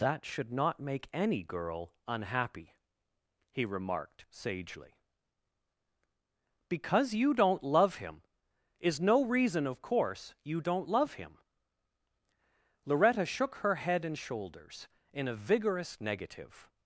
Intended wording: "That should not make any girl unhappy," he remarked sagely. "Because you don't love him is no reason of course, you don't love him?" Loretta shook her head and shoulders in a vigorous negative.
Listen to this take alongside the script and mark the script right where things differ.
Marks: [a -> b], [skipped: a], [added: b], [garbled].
"That should not make any girl unhappy," he remarked sagely. "Because you don't love him is no reason of course, you don't love him?" Loretta shook her head and shoulders in a vigorous negative.